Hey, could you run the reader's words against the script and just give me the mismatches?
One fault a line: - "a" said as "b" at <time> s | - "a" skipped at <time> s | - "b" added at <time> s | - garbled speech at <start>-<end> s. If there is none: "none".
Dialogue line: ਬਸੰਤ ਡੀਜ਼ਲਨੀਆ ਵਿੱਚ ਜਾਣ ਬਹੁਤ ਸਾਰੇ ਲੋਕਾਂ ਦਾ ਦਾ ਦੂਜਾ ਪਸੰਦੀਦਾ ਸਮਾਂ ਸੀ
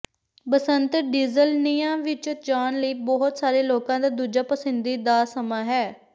- "ਲਈ" added at 2.8 s
- "ਦਾ" skipped at 4.1 s
- "ਸੀ" said as "ਹੈ" at 5.7 s